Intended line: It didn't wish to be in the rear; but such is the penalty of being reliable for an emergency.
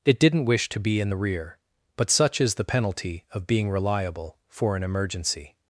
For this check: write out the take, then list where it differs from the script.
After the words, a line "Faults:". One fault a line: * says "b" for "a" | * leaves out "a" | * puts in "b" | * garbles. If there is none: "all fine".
It didn't wish to be in the rear; but such is the penalty of being reliable for an emergency.
Faults:
all fine